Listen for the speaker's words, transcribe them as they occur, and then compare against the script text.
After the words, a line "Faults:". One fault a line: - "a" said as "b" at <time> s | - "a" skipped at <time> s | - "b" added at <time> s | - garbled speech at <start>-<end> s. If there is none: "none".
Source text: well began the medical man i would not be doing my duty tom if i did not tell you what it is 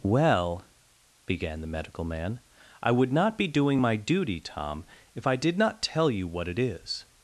well began the medical man i would not be doing my duty tom if i did not tell you what it is
Faults:
none